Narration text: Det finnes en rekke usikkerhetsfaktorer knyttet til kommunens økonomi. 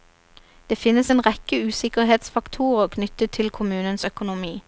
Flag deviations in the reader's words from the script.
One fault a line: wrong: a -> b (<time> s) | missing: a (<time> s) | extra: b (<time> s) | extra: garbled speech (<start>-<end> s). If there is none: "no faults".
no faults